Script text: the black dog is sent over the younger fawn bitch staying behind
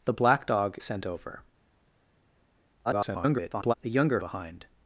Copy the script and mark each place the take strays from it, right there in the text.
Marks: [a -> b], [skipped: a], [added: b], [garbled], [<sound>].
the black dog [skipped: is] sent over [garbled] the younger [skipped: fawn bitch staying] behind